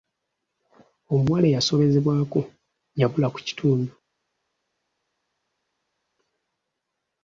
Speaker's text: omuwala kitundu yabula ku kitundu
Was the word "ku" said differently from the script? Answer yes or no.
no